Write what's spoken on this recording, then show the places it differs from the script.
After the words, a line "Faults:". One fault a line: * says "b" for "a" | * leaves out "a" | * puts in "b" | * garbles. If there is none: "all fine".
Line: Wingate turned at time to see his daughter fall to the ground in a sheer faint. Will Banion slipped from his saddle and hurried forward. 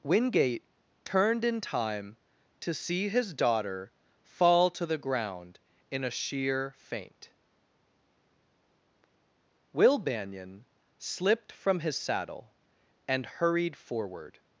Wingate turned in time to see his daughter fall to the ground in a sheer faint. Will Banion slipped from his saddle and hurried forward.
Faults:
* says "in" for "at"